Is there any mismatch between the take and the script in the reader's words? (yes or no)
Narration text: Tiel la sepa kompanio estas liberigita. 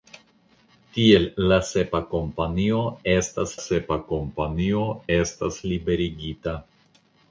yes